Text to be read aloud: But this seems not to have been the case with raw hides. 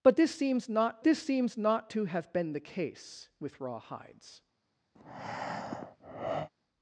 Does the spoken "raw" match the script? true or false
true